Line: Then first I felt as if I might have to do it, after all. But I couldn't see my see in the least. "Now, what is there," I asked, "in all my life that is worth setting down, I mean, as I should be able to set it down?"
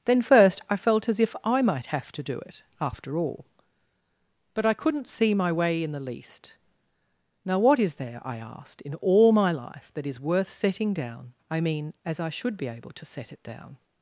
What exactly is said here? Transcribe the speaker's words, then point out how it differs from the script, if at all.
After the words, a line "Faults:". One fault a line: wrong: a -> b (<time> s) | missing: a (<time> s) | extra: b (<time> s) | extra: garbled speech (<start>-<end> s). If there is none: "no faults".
Then first I felt as if I might have to do it, after all. But I couldn't see my way in the least. "Now, what is there," I asked, "in all my life that is worth setting down, I mean, as I should be able to set it down?"
Faults:
wrong: see -> way (5.5 s)